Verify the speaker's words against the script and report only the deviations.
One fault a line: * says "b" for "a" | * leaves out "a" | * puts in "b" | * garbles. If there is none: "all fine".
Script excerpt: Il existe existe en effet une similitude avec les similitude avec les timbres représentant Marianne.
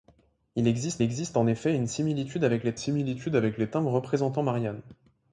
all fine